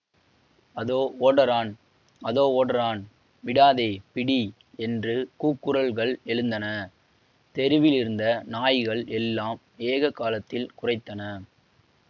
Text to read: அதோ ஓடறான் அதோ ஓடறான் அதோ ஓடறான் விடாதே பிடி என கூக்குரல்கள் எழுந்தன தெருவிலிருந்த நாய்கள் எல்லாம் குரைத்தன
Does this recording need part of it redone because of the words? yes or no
yes